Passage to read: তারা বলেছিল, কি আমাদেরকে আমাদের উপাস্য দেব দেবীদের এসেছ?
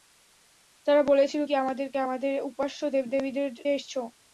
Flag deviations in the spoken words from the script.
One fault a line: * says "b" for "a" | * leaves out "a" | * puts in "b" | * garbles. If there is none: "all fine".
all fine